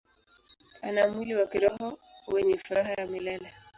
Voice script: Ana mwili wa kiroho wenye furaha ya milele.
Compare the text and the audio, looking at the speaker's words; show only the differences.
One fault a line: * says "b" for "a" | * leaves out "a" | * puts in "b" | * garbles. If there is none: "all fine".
all fine